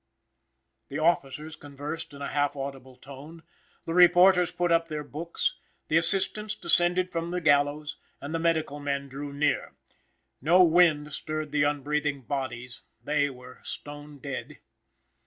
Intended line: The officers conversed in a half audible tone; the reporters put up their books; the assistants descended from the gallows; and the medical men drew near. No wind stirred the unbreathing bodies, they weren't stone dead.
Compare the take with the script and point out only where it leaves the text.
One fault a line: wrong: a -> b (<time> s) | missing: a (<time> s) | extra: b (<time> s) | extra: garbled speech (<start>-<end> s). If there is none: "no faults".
wrong: weren't -> were (13.3 s)